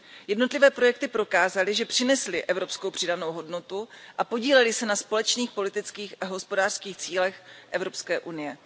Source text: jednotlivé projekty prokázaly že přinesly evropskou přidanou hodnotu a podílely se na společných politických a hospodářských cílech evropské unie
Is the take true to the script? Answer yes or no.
yes